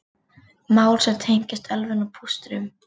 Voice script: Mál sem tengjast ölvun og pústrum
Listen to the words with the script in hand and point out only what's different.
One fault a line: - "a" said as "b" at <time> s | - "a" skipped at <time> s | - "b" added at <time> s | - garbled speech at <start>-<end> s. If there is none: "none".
none